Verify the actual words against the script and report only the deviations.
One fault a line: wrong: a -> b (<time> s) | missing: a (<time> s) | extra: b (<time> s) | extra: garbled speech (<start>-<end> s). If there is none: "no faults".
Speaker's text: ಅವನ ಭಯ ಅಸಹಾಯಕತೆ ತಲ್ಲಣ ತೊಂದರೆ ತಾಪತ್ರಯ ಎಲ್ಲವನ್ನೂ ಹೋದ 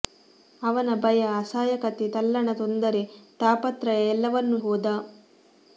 no faults